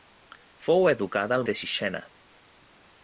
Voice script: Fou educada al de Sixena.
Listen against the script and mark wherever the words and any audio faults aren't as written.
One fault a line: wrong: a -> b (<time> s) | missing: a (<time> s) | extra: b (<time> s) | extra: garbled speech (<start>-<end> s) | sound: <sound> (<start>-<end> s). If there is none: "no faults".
no faults